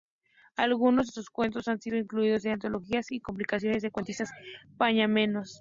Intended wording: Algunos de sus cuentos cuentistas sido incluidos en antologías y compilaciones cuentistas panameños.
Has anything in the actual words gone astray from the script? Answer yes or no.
yes